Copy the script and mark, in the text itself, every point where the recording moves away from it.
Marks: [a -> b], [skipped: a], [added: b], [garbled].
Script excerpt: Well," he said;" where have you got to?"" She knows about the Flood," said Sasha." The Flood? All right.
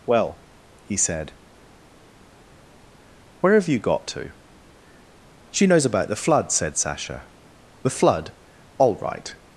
Well," he said;" where have you got to?"" She knows about the Flood," said Sasha." The Flood? All right.